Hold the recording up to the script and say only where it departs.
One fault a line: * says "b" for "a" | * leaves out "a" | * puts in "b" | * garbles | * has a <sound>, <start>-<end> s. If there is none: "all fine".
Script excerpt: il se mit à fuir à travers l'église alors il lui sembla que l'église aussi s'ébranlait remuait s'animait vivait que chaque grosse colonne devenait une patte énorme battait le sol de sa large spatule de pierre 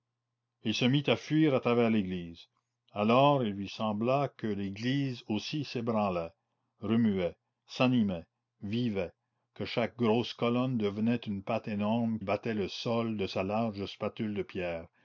all fine